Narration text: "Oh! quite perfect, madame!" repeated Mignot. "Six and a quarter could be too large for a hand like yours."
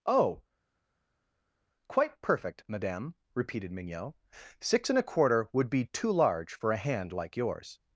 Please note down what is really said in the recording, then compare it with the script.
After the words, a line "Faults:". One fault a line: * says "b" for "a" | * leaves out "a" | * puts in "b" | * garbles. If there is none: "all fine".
"Oh! quite perfect, madame!" repeated Mignot. "Six and a quarter would be too large for a hand like yours."
Faults:
* says "would" for "could"